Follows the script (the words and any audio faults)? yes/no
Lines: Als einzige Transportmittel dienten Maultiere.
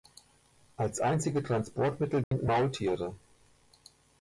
no